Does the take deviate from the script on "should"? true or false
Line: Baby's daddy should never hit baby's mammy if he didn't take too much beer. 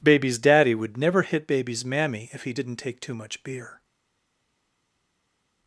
true